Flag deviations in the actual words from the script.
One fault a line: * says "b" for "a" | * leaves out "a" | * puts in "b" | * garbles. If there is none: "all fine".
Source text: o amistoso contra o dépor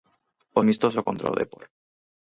all fine